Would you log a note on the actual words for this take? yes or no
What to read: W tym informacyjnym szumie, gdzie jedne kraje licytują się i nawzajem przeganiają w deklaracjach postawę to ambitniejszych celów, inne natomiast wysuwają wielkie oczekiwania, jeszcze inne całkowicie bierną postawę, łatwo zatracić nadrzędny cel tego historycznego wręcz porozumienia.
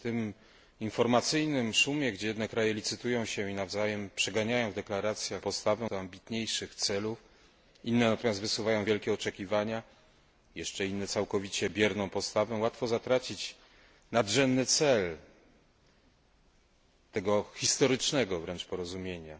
no